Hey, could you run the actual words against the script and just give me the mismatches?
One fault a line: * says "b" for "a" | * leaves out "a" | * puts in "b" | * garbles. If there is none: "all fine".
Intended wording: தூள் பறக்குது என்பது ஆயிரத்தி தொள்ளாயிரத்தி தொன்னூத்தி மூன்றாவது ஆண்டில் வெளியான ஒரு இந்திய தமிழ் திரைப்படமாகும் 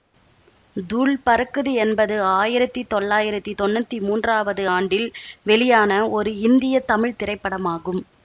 all fine